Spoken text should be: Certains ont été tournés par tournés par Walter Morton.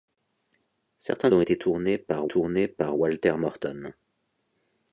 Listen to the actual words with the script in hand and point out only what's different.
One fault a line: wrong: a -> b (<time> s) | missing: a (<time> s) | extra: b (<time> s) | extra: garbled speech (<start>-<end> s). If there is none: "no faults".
no faults